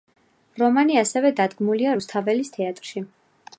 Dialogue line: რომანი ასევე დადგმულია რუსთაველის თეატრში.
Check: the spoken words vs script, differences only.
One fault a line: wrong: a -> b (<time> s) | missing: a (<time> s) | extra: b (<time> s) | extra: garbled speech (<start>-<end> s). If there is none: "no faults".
no faults